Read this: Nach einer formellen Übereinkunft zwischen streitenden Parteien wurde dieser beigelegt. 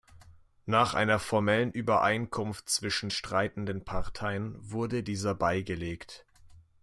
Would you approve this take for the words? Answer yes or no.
yes